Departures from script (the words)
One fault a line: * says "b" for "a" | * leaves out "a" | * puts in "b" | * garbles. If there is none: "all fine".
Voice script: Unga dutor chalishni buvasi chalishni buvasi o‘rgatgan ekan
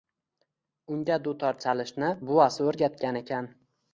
* leaves out "chalishni buvasi"